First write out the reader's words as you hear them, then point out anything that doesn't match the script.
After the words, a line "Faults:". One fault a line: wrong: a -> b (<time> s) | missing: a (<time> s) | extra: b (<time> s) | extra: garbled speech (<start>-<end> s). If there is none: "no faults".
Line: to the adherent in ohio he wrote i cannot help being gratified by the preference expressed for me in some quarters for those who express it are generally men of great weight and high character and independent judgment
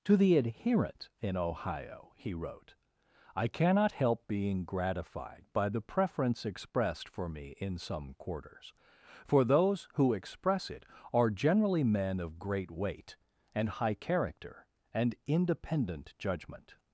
to the adherent in ohio he wrote i cannot help being gratified by the preference expressed for me in some quarters for those who express it are generally men of great weight and high character and independent judgment
Faults:
no faults